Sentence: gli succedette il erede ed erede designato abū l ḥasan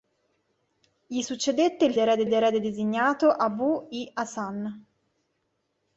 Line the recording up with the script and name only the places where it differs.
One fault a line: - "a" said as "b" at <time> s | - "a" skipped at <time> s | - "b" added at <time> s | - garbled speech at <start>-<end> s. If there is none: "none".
none